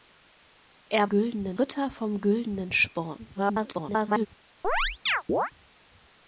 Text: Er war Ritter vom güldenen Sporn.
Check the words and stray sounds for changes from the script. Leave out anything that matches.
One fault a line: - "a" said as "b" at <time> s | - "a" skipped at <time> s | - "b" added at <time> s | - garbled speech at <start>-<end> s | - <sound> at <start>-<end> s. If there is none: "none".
- "war" said as "güldenen" at 1.1 s
- garbled speech at 3.3-4.3 s
- chirp at 4.6-5.5 s